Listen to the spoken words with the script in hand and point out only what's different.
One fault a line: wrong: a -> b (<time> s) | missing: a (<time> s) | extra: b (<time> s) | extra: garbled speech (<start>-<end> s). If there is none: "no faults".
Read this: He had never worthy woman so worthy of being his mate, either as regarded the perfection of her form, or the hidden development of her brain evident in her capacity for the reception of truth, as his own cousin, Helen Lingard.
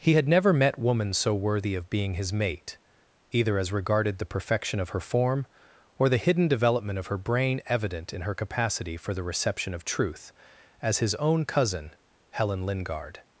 wrong: worthy -> met (0.5 s)